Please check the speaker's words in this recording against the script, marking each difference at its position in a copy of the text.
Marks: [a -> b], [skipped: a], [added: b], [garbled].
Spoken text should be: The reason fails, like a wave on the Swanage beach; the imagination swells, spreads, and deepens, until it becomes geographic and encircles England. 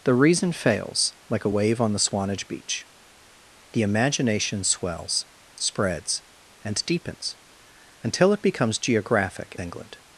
The reason fails, like a wave on the Swanage beach; the imagination swells, spreads, and deepens, until it becomes geographic [skipped: and encircles] England.